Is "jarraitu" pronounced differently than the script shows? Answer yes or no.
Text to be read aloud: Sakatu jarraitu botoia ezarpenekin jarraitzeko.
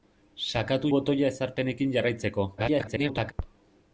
yes